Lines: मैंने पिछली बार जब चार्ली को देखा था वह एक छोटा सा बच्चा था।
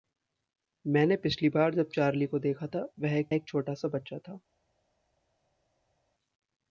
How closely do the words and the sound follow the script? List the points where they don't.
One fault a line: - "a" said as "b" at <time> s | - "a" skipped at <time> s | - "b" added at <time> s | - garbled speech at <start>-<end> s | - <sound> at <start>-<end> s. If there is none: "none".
- "एक" added at 3.3 s